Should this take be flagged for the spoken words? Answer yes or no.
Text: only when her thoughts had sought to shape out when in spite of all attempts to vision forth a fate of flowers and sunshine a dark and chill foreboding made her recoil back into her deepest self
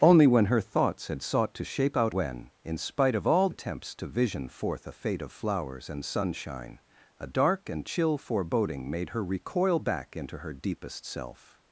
no